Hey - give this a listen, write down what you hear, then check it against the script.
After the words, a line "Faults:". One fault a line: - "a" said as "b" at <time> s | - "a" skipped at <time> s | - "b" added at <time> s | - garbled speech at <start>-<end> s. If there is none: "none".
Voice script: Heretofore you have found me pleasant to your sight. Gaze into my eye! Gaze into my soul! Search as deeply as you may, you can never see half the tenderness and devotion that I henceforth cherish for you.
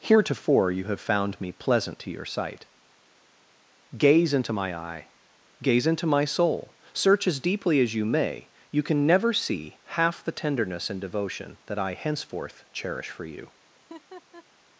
Heretofore you have found me pleasant to your sight. Gaze into my eye! Gaze into my soul! Search as deeply as you may, you can never see half the tenderness and devotion that I henceforth cherish for you.
Faults:
none